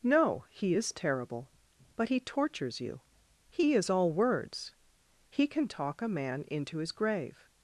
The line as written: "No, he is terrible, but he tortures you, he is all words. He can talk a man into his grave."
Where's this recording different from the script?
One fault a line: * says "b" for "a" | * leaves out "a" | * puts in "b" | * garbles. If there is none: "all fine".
all fine